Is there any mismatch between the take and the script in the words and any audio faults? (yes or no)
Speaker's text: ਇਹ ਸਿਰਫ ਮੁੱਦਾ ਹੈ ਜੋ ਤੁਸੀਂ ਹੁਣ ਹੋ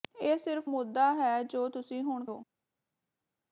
no